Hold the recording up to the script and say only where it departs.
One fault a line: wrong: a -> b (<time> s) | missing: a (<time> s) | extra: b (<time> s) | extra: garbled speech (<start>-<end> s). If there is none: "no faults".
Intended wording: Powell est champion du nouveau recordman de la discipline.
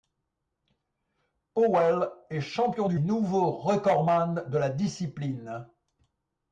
no faults